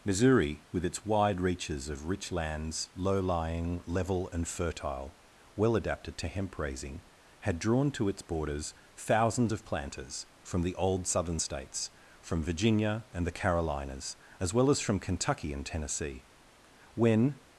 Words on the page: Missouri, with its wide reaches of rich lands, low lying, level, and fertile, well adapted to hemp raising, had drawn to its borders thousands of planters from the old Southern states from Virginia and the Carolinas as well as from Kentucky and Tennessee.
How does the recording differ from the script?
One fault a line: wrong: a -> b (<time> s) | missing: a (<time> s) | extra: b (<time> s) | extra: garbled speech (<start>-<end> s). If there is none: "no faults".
extra: When (16.9 s)